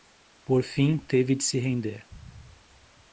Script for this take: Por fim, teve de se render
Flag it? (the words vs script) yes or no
no